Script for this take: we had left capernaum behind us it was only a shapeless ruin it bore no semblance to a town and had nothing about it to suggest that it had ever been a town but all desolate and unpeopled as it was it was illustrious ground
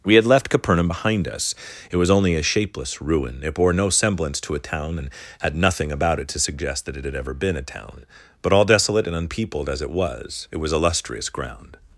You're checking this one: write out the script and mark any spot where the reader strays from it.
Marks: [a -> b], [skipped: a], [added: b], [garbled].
we had left capernaum behind us it was only a shapeless ruin it bore no semblance to a town and had nothing about it to suggest that it had ever been a town but all desolate and unpeopled as it was it was illustrious ground